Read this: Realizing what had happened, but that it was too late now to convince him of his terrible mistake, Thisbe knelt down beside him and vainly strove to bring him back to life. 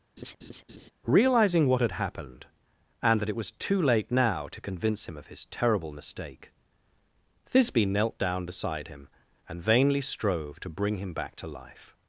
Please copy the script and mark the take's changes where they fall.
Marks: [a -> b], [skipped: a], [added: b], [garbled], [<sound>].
[laugh] Realizing what had happened, [but -> and] that it was too late now to convince him of his terrible mistake, Thisbe knelt down beside him and vainly strove to bring him back to life.